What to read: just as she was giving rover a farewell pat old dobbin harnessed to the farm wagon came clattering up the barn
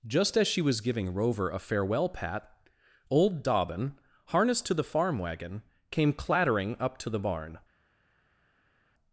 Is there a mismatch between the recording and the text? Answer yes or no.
yes